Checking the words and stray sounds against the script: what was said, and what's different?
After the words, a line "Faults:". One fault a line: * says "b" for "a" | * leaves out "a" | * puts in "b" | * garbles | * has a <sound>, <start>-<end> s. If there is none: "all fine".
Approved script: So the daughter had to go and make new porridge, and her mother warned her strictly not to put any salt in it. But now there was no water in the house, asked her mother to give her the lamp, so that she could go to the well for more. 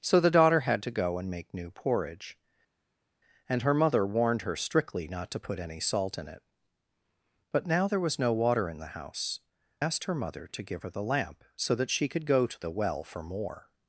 So the daughter had to go and make new porridge, and her mother warned her strictly not to put any salt in it. But now there was no water in the house, asked her mother to give her the lamp, so that she could go to the well for more.
Faults:
all fine